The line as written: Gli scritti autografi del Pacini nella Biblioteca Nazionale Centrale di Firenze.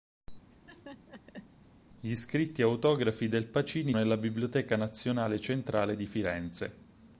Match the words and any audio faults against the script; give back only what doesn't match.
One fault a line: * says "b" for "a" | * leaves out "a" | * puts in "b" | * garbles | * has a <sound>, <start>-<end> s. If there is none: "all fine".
* has a laugh, 0.5-1.5 s